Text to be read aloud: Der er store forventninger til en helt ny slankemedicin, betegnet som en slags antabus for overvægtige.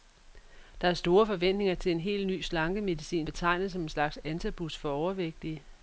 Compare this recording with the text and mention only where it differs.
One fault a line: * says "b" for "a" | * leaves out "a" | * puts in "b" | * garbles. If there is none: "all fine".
all fine